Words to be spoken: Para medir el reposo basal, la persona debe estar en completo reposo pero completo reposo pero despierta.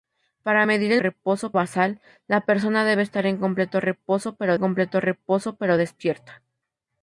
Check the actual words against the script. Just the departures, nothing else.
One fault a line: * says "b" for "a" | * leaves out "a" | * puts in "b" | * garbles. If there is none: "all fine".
all fine